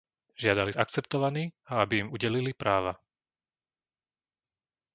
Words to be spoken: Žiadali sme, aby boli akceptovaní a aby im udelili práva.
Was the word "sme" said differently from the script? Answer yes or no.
yes